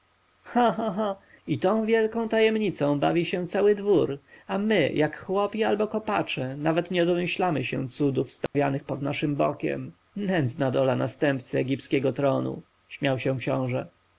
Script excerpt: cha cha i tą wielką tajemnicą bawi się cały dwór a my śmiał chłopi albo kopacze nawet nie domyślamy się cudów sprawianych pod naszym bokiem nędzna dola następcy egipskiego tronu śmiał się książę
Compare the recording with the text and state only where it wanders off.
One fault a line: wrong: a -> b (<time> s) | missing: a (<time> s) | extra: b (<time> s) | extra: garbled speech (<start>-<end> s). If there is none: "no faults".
wrong: śmiał -> jak (4.9 s)